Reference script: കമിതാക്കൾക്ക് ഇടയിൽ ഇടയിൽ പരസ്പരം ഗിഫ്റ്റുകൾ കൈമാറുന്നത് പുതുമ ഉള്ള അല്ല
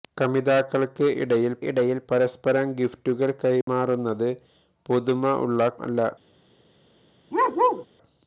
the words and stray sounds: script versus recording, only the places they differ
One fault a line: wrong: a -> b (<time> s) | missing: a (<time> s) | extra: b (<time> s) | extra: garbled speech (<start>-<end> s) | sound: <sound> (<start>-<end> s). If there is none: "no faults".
sound: dropout (3.6-3.7 s)
sound: bark (7.3-7.9 s)